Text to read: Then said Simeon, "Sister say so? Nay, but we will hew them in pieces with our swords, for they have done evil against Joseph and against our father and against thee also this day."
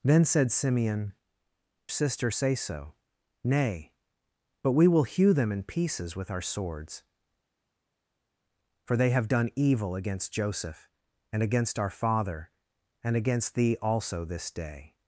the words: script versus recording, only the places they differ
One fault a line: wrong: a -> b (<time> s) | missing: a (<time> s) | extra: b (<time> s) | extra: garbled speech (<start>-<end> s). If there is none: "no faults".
no faults